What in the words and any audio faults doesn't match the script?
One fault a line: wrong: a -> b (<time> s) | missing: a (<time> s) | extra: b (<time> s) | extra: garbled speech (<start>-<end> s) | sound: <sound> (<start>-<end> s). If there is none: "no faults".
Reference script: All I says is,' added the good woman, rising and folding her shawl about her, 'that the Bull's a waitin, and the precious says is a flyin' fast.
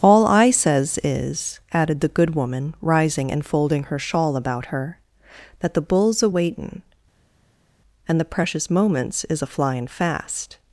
wrong: says -> moments (8.7 s)